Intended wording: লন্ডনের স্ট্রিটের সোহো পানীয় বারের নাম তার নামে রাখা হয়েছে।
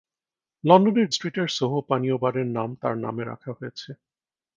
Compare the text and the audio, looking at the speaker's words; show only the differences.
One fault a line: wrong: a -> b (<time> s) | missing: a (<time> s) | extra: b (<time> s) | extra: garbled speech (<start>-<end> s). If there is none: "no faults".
no faults